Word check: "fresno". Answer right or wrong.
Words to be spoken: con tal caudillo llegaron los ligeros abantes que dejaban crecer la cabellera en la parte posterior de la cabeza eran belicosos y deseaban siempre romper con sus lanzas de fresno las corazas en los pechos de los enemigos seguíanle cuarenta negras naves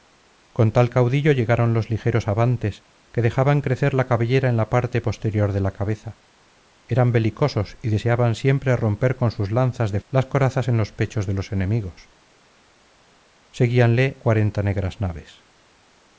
wrong